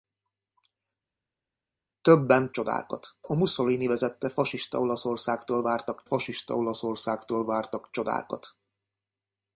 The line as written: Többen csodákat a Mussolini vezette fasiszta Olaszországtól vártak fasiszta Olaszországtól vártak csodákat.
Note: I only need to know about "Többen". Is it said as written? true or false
true